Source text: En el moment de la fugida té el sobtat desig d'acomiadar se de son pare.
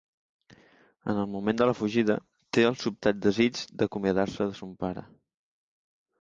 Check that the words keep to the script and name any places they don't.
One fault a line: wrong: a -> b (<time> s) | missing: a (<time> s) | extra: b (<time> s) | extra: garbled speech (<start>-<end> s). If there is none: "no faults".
no faults